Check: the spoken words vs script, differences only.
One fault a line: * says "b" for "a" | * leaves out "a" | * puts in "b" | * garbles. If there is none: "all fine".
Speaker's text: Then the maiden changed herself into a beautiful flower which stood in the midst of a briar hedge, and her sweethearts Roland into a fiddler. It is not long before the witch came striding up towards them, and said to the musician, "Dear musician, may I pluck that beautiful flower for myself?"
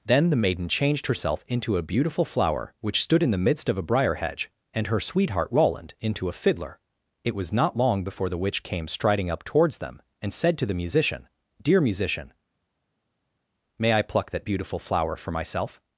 * says "sweetheart" for "sweethearts"
* says "was" for "is"